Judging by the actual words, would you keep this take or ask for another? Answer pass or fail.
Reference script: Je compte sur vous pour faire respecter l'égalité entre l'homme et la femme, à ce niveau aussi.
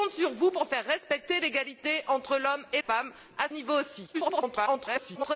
fail